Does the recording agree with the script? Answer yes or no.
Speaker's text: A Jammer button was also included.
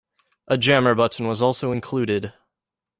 yes